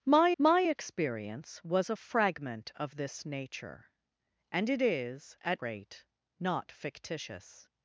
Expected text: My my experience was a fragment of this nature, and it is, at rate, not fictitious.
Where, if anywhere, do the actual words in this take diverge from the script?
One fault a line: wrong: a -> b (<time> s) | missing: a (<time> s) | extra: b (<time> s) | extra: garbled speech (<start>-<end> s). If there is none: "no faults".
no faults